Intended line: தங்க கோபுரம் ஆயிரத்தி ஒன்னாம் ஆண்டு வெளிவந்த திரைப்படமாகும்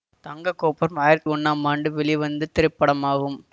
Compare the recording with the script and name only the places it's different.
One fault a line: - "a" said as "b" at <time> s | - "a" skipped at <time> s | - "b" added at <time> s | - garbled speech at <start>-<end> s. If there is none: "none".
none